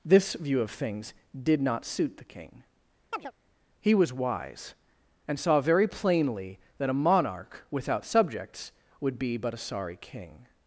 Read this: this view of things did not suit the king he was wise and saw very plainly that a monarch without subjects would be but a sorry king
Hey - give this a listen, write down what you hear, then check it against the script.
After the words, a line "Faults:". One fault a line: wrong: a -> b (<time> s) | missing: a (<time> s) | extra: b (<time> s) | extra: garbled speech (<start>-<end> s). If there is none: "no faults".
this view of things did not suit the king he was wise and saw very plainly that a monarch without subjects would be but a sorry king
Faults:
no faults